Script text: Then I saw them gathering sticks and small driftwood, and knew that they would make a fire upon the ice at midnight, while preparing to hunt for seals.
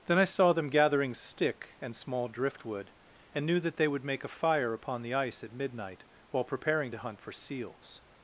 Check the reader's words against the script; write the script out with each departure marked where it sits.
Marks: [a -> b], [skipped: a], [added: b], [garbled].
Then I saw them gathering [sticks -> stick] and small driftwood, and knew that they would make a fire upon the ice at midnight, while preparing to hunt for seals.